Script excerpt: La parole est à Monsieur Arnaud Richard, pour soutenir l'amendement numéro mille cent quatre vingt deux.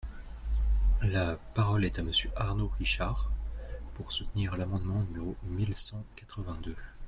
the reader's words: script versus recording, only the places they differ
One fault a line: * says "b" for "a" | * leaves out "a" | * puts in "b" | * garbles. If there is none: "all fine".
all fine